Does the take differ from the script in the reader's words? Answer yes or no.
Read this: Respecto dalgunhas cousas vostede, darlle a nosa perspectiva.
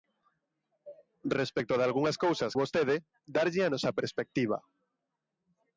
no